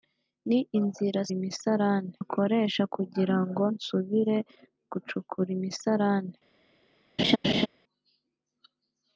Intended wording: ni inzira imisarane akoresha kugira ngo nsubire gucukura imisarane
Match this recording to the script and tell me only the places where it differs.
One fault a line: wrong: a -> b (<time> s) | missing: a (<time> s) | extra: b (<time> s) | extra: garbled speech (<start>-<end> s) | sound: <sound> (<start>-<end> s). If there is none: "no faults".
sound: laugh (7.2-7.7 s)